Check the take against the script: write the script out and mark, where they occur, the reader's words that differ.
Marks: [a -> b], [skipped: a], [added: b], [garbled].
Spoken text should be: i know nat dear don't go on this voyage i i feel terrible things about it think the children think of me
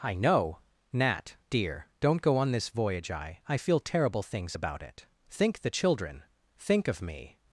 i know nat dear don't go on this voyage i i feel terrible things about it think the children think of me